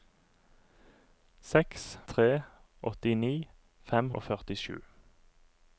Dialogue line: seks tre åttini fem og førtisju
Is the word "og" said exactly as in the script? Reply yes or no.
yes